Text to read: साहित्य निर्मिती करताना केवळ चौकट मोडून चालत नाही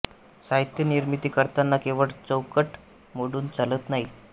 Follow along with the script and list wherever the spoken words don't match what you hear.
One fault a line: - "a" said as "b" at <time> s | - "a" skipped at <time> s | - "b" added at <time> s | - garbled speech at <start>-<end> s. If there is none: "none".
none